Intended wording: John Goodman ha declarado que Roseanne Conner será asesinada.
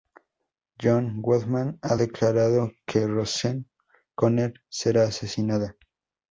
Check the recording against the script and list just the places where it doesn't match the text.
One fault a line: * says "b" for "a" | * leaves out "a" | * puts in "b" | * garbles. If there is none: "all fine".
all fine